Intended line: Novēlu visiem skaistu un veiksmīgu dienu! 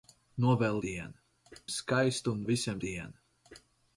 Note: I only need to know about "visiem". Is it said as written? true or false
false